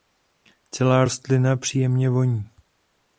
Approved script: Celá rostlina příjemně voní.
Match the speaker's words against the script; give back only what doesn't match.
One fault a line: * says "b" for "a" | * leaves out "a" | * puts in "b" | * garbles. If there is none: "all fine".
all fine